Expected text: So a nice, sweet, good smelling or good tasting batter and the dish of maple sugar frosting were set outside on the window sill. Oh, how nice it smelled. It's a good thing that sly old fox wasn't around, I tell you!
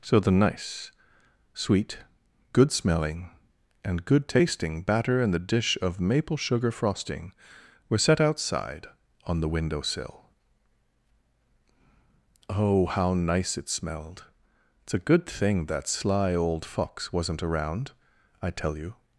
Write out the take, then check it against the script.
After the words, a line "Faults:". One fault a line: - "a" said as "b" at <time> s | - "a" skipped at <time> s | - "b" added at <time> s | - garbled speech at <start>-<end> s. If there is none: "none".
So the nice, sweet, good smelling and good tasting batter and the dish of maple sugar frosting were set outside on the window sill. Oh, how nice it smelled. It's a good thing that sly old fox wasn't around, I tell you!
Faults:
- "a" said as "the" at 0.2 s
- "or" said as "and" at 3.8 s